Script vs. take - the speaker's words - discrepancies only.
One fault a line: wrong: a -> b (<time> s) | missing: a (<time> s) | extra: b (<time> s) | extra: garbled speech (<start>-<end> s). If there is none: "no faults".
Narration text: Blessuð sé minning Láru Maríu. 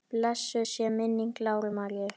no faults